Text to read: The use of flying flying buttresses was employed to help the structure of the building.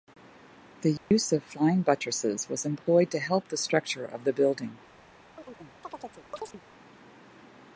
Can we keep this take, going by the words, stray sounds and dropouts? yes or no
no